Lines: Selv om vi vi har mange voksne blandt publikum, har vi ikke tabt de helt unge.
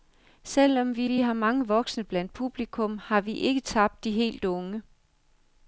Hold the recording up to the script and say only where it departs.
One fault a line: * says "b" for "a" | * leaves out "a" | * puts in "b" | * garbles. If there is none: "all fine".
all fine